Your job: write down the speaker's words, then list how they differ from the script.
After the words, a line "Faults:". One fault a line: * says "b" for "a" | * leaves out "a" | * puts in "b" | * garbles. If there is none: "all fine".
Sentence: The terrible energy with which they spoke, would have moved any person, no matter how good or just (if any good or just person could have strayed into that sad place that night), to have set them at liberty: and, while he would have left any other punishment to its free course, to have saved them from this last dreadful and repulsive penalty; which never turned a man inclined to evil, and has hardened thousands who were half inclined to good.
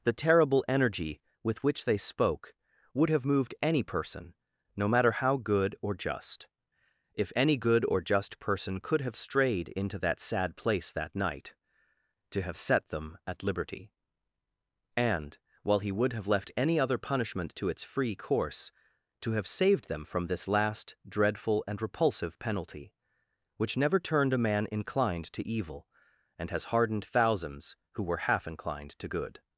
The terrible energy with which they spoke, would have moved any person, no matter how good or just (if any good or just person could have strayed into that sad place that night), to have set them at liberty: and, while he would have left any other punishment to its free course, to have saved them from this last dreadful and repulsive penalty; which never turned a man inclined to evil, and has hardened thousands who were half inclined to good.
Faults:
all fine